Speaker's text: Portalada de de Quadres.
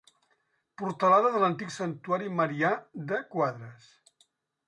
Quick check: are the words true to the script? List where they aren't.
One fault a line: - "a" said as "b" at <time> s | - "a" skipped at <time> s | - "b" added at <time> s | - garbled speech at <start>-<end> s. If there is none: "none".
- "l'antic Santuari Marià" added at 1.4 s